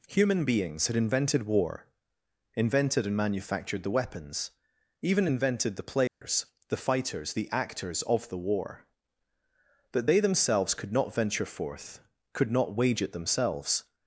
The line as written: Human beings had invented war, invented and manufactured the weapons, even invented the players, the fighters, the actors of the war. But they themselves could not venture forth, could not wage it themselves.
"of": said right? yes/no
yes